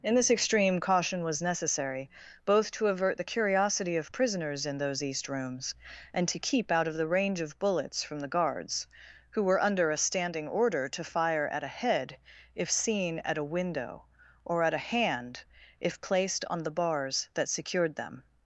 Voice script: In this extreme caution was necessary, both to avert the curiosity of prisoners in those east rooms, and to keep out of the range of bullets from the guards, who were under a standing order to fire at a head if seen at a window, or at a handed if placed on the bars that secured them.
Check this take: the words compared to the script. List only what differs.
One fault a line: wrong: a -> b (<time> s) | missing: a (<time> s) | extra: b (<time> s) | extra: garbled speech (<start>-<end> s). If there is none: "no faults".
wrong: handed -> hand (14.9 s)